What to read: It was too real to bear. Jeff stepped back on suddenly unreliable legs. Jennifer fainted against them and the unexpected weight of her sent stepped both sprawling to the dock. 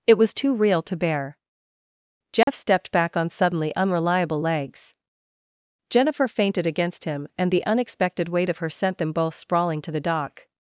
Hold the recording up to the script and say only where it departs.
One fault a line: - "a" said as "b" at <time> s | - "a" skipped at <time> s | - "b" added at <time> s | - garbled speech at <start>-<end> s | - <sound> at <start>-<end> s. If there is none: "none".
- dropout at 2.4-2.5 s
- "them" said as "him" at 7.0 s
- "stepped" said as "them" at 9.0 s